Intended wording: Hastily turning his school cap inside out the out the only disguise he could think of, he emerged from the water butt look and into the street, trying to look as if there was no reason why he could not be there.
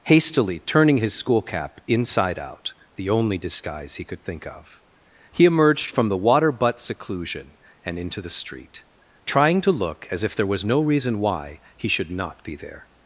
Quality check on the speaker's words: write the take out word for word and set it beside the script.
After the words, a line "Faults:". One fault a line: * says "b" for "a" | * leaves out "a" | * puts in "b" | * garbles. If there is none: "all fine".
Hastily turning his school cap inside out the only disguise he could think of, he emerged from the water butt seclusion and into the street, trying to look as if there was no reason why he should not be there.
Faults:
* leaves out "out the"
* says "seclusion" for "look"
* says "should" for "could"